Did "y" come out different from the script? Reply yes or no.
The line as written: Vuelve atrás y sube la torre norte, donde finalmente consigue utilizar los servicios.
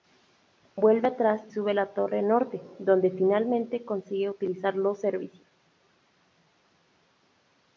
yes